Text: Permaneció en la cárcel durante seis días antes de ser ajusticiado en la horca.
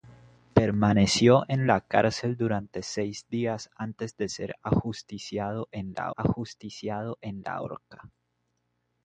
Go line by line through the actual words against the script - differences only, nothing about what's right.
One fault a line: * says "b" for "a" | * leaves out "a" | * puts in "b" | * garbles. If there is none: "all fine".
* puts in "ajusticiado en la"